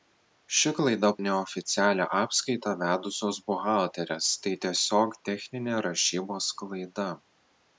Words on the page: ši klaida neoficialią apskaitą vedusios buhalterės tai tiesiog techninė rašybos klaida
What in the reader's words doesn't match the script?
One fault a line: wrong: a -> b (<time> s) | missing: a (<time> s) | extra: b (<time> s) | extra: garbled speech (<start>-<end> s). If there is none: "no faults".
no faults